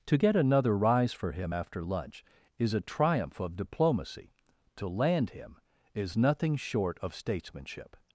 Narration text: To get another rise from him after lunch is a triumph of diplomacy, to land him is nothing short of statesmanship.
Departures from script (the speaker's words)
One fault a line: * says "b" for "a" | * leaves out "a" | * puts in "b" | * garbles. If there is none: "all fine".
* says "for" for "from"